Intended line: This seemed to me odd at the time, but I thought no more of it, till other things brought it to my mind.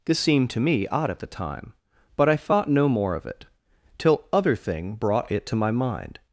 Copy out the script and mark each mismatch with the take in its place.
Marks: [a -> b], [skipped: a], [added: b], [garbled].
This seemed to me odd at the time, but I thought no more of it, till other [things -> thing] brought it to my mind.